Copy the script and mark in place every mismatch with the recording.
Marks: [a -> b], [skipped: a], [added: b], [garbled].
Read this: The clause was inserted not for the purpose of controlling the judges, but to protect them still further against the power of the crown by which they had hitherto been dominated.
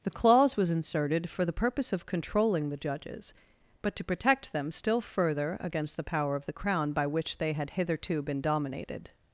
The clause was inserted [skipped: not] for the purpose of controlling the judges, but to protect them still further against the power of the crown by which they had hitherto been dominated.